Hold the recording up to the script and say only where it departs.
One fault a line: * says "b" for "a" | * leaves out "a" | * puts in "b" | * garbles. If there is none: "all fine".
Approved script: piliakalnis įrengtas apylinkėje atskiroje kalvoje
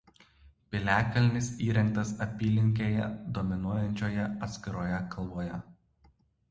* puts in "dominuojančioje"